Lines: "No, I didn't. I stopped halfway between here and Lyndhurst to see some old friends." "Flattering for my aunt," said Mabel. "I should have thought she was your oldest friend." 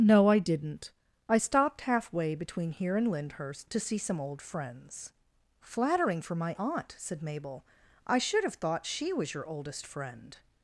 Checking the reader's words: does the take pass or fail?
pass